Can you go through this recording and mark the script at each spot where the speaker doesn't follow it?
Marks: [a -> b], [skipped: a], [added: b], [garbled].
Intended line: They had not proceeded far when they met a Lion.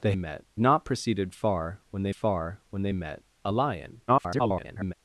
They [had -> met] not proceeded far when they [added: far when they] met a Lion. [garbled]